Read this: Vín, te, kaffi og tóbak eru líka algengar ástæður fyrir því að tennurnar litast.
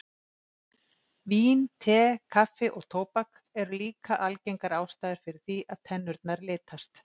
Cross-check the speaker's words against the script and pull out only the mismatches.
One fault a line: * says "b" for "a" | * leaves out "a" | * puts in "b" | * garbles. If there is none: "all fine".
all fine